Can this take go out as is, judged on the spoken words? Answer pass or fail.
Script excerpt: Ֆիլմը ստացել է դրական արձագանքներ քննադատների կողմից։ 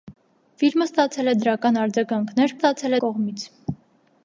fail